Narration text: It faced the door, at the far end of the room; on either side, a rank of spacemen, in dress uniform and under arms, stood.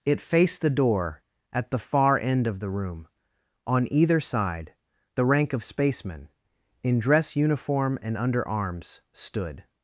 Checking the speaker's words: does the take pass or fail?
fail